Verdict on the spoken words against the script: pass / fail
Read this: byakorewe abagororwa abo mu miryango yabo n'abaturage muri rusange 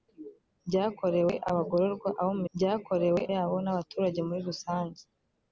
fail